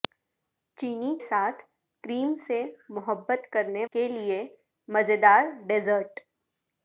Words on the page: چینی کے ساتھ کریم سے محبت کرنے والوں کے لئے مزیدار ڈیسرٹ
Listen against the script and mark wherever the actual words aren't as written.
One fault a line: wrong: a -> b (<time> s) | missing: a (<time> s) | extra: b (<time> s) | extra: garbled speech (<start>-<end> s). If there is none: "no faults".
missing: کے (1.1 s)
missing: والوں (3.8 s)